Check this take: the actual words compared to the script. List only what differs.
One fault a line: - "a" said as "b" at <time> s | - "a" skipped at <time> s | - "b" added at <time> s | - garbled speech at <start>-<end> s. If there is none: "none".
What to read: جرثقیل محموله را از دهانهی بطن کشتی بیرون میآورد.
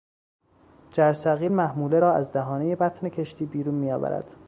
none